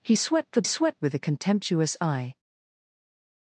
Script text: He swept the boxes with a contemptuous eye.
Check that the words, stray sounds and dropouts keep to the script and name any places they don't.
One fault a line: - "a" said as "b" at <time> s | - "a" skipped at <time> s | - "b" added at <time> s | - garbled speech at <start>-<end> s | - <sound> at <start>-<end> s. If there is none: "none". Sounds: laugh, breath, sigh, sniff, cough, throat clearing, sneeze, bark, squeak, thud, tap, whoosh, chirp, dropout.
- "boxes" said as "swept" at 0.6 s